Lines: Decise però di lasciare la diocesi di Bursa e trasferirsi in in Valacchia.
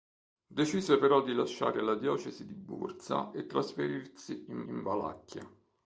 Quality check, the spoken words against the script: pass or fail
pass